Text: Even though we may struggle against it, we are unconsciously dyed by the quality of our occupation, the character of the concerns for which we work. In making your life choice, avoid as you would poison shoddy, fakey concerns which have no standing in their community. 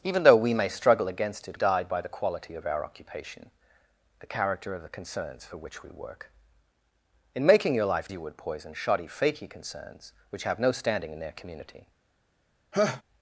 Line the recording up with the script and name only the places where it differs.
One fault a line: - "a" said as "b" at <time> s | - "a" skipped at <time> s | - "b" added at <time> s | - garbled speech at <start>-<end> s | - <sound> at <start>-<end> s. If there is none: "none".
- "we are unconsciously" skipped at 1.6 s
- "choice avoid as" skipped at 8.1 s
- laugh at 12.7-13.0 s